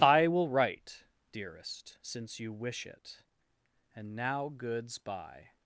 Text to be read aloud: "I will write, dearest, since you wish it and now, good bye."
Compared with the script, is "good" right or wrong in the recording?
wrong